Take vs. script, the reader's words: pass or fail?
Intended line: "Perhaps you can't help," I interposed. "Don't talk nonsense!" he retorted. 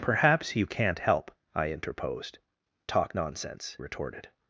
fail